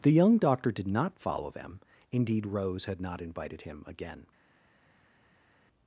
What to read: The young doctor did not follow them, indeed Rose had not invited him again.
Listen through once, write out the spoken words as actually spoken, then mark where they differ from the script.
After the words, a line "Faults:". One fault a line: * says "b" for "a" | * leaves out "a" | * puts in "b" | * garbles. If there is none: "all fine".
The young doctor did not follow them, indeed Rose had not invited him again.
Faults:
all fine